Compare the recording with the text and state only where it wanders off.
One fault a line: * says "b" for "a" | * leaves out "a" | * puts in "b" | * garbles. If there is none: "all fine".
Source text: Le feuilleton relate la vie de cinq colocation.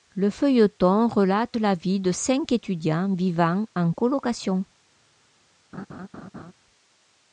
* puts in "étudiants vivant en"